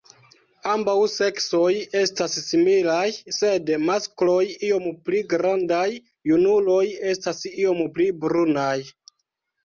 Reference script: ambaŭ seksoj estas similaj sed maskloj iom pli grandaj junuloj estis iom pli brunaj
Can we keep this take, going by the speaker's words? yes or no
no